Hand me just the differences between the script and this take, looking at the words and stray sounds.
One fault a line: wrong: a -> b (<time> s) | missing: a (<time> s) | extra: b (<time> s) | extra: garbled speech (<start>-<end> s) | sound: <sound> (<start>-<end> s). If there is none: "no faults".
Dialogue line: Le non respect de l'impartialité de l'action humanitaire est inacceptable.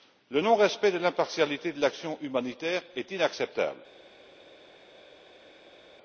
no faults